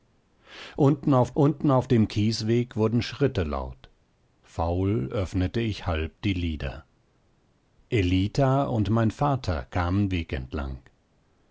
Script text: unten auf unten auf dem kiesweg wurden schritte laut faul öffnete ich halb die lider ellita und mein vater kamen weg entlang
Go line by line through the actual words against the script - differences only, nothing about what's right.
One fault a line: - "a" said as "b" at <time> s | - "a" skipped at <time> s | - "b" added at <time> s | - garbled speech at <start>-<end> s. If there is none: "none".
none